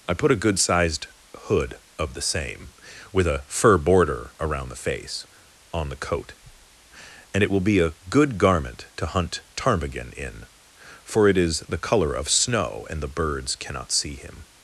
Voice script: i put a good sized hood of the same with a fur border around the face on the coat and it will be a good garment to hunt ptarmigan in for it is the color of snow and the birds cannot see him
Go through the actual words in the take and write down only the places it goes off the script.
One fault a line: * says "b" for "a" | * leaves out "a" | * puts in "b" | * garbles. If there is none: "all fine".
all fine